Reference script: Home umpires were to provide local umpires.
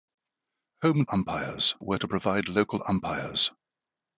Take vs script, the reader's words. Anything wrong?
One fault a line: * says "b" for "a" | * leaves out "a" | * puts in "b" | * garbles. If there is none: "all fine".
all fine